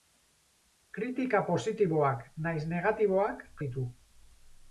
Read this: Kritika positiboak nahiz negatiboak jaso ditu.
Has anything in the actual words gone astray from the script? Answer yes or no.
yes